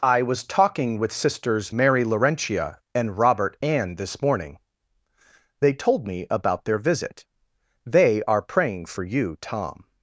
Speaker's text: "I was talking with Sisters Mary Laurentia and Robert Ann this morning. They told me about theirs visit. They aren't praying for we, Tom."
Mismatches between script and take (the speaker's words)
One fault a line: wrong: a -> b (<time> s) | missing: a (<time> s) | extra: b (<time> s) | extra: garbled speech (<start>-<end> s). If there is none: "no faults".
wrong: theirs -> their (6.6 s)
wrong: aren't -> are (8.2 s)
wrong: we -> you (9.0 s)